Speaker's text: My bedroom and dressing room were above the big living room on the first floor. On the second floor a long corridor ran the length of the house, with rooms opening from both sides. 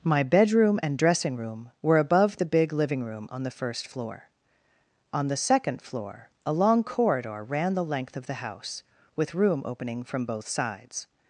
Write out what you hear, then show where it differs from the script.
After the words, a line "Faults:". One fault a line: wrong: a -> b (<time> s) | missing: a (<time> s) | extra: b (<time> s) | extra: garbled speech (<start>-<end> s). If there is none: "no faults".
My bedroom and dressing room were above the big living room on the first floor. On the second floor a long corridor ran the length of the house, with room opening from both sides.
Faults:
wrong: rooms -> room (9.3 s)